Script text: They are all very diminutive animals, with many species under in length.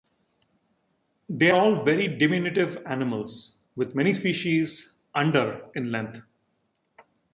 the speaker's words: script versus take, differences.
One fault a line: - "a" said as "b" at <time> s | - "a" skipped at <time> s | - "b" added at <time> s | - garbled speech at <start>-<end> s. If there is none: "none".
- "are" skipped at 1.5 s